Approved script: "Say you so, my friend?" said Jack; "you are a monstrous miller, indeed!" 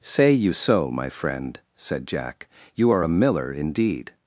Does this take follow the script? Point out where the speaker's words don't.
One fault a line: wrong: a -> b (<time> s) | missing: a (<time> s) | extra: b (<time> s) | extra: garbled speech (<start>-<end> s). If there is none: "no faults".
missing: monstrous (3.1 s)